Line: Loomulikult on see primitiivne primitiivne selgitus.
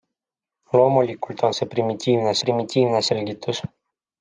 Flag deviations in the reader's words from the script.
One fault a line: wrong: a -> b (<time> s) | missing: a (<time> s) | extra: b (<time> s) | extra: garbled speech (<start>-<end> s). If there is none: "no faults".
no faults